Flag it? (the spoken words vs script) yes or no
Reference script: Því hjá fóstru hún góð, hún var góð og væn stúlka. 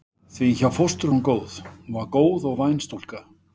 no